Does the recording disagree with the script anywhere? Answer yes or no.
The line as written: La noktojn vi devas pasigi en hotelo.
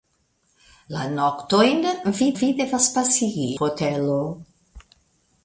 yes